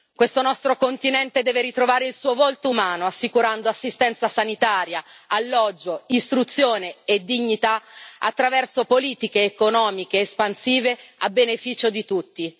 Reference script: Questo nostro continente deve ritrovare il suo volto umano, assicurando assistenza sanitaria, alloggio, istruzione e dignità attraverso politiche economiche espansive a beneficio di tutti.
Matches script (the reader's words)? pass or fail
pass